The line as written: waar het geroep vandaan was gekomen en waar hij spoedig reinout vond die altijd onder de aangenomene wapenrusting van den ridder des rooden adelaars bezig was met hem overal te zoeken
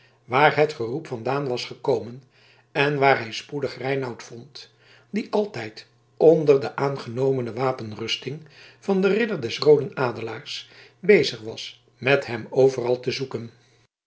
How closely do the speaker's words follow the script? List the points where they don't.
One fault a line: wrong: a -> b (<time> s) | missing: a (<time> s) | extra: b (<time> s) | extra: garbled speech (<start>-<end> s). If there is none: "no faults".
no faults